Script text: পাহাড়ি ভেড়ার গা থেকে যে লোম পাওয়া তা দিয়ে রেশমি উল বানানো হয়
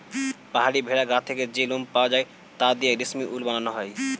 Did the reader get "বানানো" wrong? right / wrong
right